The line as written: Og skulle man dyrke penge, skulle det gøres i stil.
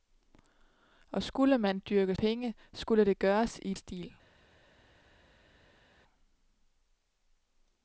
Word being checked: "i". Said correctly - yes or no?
yes